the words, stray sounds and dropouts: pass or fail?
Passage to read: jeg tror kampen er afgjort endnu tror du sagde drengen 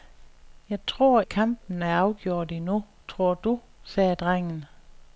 pass